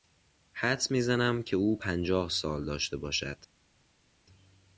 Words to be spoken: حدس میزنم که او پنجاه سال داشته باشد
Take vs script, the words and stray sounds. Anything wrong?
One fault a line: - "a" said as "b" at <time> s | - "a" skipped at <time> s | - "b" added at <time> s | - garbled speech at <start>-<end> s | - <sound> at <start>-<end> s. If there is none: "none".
none